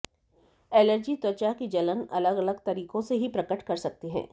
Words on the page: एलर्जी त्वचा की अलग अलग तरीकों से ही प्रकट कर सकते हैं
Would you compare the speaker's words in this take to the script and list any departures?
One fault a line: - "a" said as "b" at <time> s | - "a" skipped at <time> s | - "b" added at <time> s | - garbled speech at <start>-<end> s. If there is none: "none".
- "जलन" added at 1.7 s